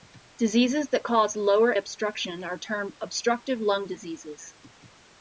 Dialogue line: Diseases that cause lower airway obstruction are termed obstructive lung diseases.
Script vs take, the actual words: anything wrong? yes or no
yes